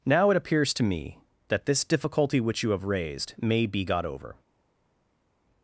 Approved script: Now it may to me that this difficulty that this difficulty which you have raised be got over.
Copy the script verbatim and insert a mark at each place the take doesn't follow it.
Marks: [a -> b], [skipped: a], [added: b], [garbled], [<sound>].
Now it [may -> appears] to me that this difficulty [skipped: that this difficulty] which you have raised [added: may] be got over.